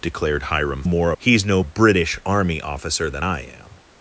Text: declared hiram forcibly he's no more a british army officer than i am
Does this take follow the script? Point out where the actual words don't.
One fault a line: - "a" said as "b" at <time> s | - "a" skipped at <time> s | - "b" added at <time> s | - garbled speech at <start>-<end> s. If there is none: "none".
- "forcibly" said as "more" at 0.8 s
- "more" skipped at 1.6 s